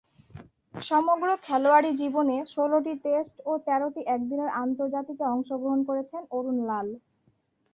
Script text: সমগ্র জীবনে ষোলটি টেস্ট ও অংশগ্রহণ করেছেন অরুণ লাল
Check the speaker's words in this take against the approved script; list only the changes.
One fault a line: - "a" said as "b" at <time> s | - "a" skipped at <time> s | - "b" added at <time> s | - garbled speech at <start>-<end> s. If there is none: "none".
- "খেলোয়াড়ী" added at 1.4 s
- "তেরোটি একদিনের আন্তর্জাতিকে" added at 3.6 s